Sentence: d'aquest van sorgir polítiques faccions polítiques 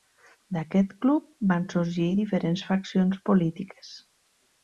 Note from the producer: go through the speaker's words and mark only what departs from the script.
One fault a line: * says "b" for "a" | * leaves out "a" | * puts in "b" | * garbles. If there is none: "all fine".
* puts in "club"
* says "diferents" for "polítiques"